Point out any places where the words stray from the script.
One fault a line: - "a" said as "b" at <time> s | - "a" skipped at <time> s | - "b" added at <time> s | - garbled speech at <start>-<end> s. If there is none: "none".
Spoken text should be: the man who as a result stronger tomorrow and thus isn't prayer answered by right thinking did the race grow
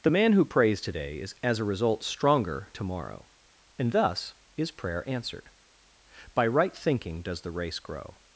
- "prays today is" added at 0.5 s
- "isn't" said as "is" at 4.5 s
- "did" said as "does" at 7.2 s